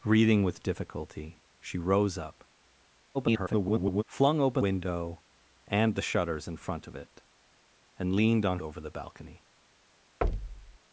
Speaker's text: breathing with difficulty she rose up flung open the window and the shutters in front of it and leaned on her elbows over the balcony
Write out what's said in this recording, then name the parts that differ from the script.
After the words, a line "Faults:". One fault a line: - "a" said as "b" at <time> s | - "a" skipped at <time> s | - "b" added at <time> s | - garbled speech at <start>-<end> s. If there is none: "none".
breathing with difficulty she rose up [garbled] flung open window and the shutters in front of it and leaned on over the balcony
Faults:
- garbled speech at 3.1-4.0 s
- "the" skipped at 4.6 s
- "her elbows" skipped at 8.6 s